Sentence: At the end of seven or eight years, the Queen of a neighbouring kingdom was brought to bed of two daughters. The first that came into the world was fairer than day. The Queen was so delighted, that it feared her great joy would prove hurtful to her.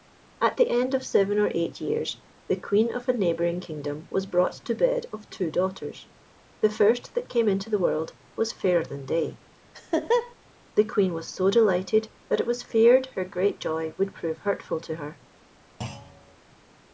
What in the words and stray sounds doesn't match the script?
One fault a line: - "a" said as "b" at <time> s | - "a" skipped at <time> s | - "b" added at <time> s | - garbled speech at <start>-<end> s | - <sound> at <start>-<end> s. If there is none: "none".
- laugh at 9.7-10.4 s
- "was" added at 12.5 s
- thud at 15.8-16.4 s